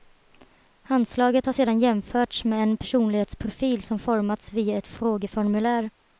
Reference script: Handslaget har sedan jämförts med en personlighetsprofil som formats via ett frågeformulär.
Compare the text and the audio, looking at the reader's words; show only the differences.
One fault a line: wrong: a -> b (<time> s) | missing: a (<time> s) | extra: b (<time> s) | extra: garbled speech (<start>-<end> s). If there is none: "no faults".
no faults